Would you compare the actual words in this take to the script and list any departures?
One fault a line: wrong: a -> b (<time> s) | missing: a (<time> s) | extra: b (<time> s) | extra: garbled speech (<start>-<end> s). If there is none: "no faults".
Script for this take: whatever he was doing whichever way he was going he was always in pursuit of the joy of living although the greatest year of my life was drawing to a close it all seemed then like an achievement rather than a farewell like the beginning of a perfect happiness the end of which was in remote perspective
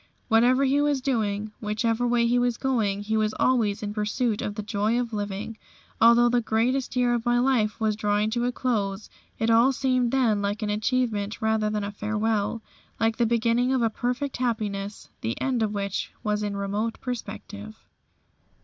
no faults